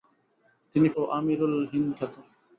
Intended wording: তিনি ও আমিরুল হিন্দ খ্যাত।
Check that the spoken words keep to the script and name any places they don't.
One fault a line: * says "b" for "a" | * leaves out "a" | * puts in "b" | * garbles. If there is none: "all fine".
all fine